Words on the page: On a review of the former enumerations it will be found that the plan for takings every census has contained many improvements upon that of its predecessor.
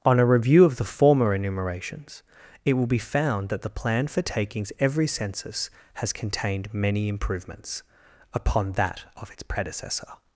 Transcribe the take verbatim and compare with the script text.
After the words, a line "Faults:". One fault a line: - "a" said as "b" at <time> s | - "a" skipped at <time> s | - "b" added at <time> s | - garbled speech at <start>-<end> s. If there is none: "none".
On a review of the former enumerations it will be found that the plan for takings every census has contained many improvements upon that of its predecessor.
Faults:
none